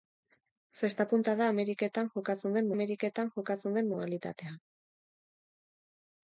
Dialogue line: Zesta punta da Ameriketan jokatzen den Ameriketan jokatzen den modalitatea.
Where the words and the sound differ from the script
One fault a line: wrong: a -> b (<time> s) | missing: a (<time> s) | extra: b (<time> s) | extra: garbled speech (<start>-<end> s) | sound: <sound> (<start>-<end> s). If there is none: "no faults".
no faults